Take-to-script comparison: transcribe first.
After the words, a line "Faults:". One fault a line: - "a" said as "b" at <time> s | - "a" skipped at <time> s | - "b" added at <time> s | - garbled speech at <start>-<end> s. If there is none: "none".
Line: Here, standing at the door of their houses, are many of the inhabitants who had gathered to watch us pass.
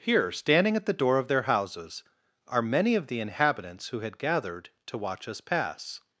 Here, standing at the door of their houses, are many of the inhabitants who had gathered to watch us pass.
Faults:
none